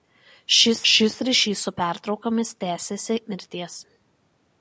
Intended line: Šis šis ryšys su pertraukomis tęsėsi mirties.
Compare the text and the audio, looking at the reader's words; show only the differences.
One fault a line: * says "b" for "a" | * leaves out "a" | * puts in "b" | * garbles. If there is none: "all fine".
all fine